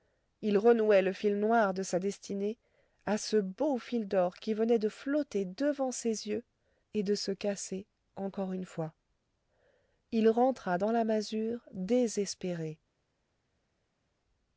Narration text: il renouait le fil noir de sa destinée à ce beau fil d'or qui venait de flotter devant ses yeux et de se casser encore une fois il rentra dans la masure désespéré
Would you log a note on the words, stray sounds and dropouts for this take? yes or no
no